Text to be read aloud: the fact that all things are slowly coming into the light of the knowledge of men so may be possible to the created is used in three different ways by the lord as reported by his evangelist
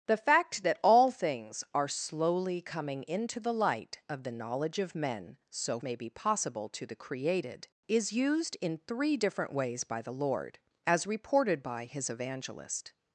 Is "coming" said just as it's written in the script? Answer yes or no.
yes